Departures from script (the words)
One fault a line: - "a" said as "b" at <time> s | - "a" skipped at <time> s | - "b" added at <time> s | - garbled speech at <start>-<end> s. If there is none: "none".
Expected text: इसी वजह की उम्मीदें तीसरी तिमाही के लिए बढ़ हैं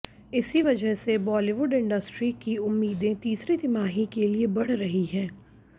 - "से बॉलीवुड इंडस्ट्री" added at 0.9 s
- "रही" added at 4.7 s